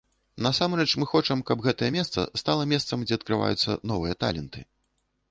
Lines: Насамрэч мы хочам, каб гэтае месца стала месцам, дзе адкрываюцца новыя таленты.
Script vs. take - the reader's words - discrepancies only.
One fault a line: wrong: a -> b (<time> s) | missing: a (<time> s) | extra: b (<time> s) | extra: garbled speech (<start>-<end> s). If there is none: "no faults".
no faults